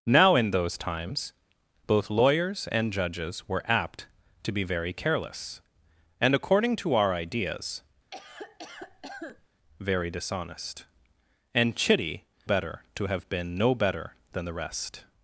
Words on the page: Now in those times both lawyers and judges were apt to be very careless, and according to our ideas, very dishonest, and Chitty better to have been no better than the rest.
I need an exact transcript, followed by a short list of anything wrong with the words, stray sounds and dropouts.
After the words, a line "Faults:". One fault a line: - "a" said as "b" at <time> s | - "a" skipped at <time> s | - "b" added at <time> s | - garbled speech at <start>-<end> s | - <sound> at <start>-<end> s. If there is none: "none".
Now in those times both lawyers and judges were apt to be very careless, and according to our ideas, very dishonest, and Chitty better to have been no better than the rest.
Faults:
- cough at 8.1-9.5 s